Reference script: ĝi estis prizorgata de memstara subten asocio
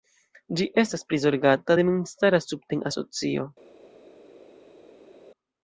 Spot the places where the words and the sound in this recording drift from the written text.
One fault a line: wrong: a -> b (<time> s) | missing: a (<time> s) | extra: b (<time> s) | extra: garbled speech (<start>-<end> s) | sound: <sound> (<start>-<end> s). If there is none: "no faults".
wrong: estis -> estas (0.8 s)